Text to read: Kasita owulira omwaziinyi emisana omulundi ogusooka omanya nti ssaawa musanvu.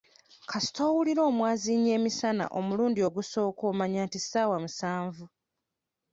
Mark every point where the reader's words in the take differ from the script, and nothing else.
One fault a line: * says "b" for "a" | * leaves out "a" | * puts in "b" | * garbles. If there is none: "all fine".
all fine